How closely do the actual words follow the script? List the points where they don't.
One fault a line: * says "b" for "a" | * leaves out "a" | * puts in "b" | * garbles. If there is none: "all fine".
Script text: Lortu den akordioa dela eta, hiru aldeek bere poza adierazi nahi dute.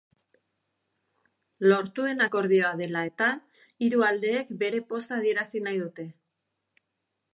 all fine